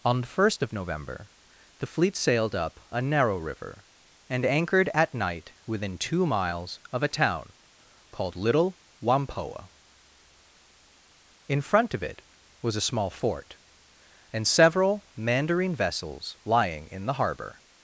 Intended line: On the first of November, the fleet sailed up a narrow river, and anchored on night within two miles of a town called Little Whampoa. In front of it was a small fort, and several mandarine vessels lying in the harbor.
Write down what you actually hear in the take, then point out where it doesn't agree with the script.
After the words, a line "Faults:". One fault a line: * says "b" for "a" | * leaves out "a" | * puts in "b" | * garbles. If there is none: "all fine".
On the first of November, the fleet sailed up a narrow river, and anchored at night within two miles of a town called Little Whampoa. In front of it was a small fort, and several mandarine vessels lying in the harbor.
Faults:
* says "at" for "on"